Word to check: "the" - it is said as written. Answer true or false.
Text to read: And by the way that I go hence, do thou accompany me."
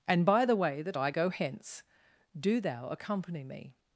true